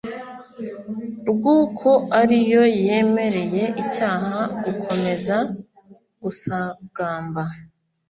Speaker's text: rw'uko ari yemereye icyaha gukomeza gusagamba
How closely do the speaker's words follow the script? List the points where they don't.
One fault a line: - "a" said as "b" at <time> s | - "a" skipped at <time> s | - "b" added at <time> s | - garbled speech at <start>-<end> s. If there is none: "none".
- "yo" added at 2.5 s